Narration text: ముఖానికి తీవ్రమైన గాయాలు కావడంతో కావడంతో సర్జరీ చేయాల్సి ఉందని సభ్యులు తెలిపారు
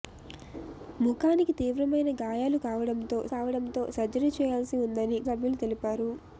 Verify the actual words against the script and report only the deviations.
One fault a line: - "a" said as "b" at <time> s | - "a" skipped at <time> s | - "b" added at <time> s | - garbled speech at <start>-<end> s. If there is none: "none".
none